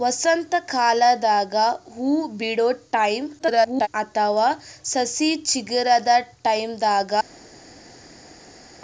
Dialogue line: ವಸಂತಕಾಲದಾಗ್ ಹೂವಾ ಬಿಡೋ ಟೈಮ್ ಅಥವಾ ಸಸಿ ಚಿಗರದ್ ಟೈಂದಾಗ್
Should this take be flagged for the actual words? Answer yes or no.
yes